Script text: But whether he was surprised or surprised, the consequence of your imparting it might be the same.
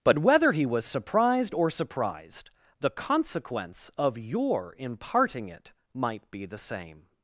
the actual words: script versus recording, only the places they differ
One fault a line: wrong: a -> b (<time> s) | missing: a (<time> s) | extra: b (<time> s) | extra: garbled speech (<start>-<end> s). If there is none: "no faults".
no faults